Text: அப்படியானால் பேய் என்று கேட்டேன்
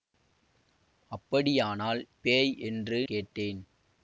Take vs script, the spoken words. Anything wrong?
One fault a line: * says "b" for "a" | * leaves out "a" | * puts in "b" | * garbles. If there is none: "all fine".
all fine